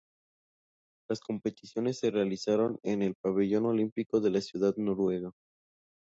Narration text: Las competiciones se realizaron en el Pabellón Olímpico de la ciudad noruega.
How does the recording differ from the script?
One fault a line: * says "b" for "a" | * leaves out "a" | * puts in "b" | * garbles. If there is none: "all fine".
all fine